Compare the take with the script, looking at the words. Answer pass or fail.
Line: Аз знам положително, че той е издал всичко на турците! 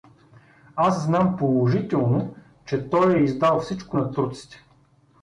pass